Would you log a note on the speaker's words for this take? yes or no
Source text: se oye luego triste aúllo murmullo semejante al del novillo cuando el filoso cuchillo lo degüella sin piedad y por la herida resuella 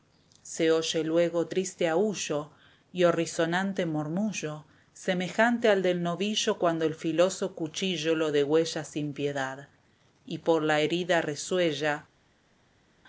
yes